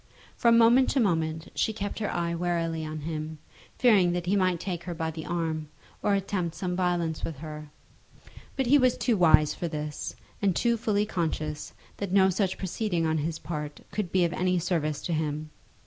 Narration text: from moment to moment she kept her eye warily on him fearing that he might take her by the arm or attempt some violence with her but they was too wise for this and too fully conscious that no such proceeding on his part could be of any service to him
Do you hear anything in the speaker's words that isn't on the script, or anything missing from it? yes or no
yes